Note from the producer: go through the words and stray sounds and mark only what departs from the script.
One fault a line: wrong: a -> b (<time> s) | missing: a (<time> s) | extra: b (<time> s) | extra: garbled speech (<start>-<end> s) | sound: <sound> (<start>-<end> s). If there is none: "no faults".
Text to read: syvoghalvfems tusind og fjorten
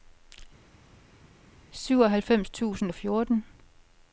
no faults